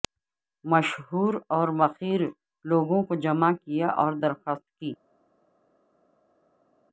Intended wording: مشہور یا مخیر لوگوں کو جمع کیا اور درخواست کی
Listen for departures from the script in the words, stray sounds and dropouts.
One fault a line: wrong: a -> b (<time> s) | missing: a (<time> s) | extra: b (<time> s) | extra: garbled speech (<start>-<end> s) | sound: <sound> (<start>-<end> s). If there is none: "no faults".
wrong: یا -> اور (1.5 s)